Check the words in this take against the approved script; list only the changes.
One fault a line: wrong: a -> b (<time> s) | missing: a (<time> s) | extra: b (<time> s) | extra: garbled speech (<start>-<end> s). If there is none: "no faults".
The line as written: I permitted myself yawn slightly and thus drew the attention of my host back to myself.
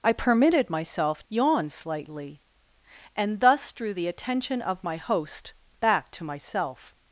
no faults